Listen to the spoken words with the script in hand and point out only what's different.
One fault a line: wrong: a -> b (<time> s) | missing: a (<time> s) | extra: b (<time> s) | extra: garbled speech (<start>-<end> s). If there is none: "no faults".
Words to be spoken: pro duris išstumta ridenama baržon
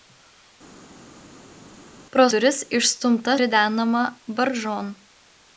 no faults